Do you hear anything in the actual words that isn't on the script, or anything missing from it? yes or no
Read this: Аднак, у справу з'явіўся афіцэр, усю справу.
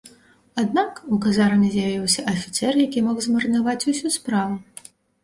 yes